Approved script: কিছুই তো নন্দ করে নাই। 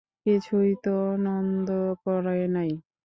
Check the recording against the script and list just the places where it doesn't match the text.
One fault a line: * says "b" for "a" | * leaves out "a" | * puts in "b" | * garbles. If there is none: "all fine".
all fine